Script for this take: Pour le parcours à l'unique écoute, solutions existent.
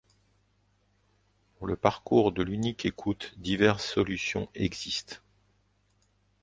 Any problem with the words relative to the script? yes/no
yes